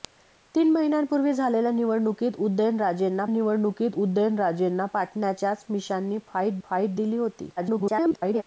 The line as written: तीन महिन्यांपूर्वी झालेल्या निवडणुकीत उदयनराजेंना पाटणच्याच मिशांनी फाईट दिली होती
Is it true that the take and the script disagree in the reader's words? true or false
true